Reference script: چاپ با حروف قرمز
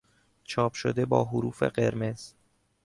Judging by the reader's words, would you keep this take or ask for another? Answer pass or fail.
fail